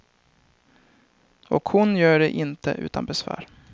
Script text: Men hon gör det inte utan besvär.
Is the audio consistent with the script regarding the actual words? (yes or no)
no